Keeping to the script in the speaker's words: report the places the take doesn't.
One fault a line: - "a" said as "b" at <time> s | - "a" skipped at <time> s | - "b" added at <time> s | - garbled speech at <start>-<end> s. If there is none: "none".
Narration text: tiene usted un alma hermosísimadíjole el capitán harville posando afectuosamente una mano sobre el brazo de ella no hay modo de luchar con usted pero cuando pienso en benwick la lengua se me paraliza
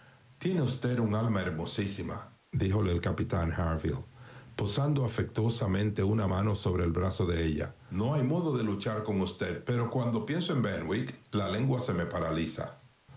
none